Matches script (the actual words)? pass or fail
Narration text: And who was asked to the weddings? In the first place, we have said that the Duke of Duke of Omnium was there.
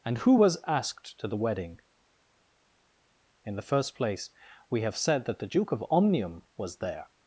fail